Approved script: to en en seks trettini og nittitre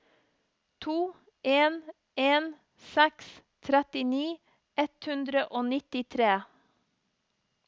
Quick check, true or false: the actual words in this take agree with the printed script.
false